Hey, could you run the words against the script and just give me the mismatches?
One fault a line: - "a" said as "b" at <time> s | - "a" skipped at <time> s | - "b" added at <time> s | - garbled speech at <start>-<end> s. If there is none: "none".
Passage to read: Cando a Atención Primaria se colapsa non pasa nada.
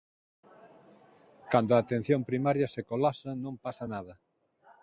none